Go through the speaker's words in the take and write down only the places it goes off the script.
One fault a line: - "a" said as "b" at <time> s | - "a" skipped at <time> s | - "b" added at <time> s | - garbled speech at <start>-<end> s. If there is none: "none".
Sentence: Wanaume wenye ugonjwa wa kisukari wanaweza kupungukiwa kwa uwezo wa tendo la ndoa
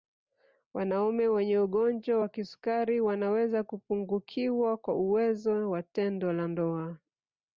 none